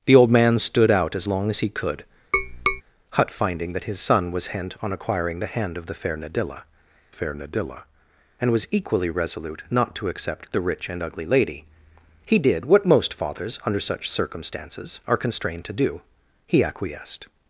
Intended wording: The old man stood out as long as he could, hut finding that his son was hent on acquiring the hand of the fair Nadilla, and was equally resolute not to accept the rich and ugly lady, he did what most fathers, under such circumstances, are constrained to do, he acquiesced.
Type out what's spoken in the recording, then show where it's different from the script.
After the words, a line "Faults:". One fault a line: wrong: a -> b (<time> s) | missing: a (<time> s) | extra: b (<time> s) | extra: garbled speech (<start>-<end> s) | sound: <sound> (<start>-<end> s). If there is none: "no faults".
The old man stood out as long as he could, hut finding that his son was hent on acquiring the hand of the fair Nadilla fair Nadilla, and was equally resolute not to accept the rich and ugly lady, he did what most fathers, under such circumstances, are constrained to do, he acquiesced.
Faults:
sound: tap (2.3-2.8 s)
extra: fair Nadilla (7.1 s)